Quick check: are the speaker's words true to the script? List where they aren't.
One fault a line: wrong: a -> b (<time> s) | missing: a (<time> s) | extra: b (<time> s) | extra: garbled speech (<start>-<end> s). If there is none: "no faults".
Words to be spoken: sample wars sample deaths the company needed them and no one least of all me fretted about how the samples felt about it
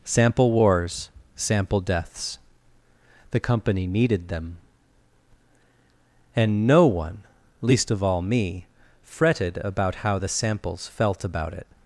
no faults